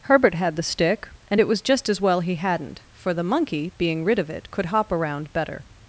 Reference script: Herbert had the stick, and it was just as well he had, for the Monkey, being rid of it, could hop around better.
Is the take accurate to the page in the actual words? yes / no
no